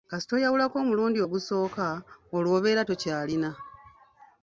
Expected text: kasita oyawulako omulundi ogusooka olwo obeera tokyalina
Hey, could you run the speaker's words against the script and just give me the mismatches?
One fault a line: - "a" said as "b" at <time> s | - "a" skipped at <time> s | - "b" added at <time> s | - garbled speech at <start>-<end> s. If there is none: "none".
none